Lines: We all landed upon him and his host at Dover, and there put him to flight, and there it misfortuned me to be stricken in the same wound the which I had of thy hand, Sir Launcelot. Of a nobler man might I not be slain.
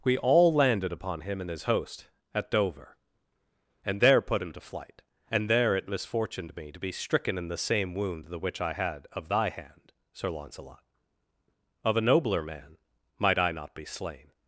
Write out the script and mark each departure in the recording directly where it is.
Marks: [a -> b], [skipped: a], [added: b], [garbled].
We all landed upon him and his host at Dover, and there put him to flight, and there it misfortuned me to be stricken in the same wound the which I had of thy hand, Sir Launcelot. Of a nobler man might I not be slain.